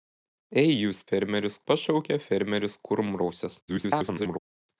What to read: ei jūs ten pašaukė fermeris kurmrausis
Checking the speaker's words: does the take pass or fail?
fail